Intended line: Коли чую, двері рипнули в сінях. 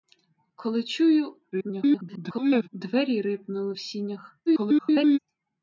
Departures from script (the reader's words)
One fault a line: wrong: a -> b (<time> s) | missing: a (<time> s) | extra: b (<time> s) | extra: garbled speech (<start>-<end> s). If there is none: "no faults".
extra: garbled speech (1.5-2.7 s)
extra: garbled speech (4.5-5.2 s)